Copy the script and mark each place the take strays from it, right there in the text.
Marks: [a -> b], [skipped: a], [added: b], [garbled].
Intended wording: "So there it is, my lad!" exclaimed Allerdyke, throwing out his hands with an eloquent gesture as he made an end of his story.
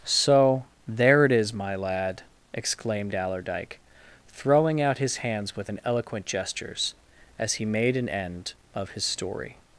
"So there it is, my lad!" exclaimed Allerdyke, throwing out his hands with an eloquent [gesture -> gestures] as he made an end of his story.